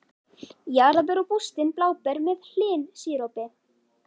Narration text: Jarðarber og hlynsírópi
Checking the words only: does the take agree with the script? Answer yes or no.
no